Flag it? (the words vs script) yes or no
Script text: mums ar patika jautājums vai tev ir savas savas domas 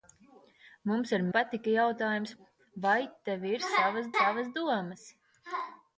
no